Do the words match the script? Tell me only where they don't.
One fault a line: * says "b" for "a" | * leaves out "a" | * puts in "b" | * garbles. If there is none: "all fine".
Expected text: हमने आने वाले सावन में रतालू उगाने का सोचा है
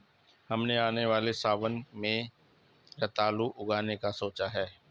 all fine